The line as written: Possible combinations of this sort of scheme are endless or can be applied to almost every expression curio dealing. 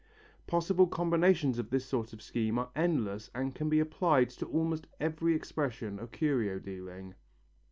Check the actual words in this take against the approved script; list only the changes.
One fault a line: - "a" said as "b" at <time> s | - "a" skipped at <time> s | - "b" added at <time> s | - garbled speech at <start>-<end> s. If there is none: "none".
- "or" said as "and" at 3.4 s
- "of" added at 6.0 s